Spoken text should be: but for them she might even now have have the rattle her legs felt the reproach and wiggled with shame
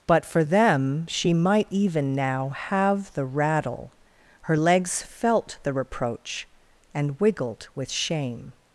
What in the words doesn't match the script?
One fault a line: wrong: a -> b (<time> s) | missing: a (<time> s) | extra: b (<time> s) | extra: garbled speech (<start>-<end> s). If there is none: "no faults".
missing: have (3.1 s)